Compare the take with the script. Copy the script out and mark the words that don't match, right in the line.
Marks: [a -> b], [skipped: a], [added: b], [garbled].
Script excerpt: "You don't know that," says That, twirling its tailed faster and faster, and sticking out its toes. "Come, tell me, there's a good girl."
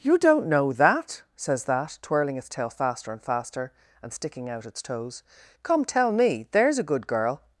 "You don't know that," says That, twirling its [tailed -> tail] faster and faster, and sticking out its toes. "Come, tell me, there's a good girl."